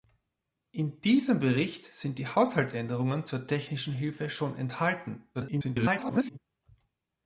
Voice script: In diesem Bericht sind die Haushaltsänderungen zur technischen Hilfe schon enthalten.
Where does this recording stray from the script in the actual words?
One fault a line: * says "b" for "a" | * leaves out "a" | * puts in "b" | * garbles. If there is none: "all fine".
* garbles